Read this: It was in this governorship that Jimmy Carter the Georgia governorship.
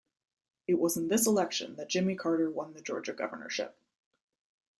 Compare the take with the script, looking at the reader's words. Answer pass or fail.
fail